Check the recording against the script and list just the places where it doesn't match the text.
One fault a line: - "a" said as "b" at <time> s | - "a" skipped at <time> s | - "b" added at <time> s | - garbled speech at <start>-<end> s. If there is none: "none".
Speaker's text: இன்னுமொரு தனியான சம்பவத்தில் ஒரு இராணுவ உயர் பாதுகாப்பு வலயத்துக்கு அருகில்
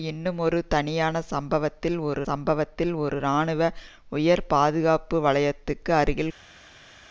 - "சம்பவத்தில் ஒரு" added at 2.2 s